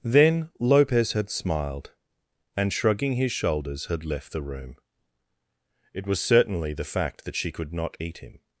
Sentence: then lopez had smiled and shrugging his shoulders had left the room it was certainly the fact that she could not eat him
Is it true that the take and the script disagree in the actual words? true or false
false